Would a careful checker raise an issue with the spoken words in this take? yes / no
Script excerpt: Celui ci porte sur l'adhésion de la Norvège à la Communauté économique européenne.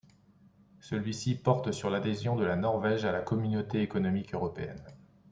no